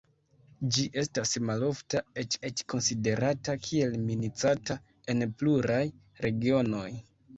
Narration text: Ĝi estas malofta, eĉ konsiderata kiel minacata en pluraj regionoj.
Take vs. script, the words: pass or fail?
fail